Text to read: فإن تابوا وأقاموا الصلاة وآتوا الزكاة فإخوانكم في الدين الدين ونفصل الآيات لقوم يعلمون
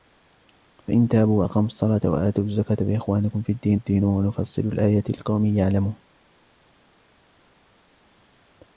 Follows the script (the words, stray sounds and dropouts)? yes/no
yes